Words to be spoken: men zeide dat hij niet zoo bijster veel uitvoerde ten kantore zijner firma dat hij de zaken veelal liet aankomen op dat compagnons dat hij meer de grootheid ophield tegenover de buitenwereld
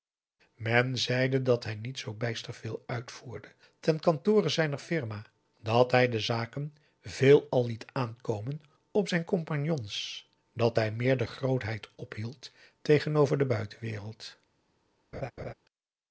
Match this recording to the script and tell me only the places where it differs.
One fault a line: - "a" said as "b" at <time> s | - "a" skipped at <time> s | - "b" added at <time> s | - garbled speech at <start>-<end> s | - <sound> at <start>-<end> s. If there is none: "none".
- "dat" said as "zijn" at 9.1 s
- laugh at 15.1-15.5 s